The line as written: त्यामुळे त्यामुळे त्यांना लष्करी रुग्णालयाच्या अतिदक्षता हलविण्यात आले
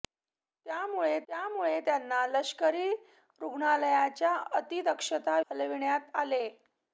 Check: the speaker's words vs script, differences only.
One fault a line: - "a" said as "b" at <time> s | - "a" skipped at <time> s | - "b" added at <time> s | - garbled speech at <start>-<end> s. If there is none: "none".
none